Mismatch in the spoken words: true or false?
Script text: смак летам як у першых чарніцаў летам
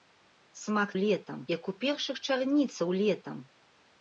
false